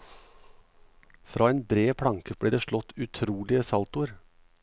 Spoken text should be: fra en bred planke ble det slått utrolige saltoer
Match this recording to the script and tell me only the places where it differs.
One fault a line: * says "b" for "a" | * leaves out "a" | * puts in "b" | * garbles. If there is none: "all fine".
all fine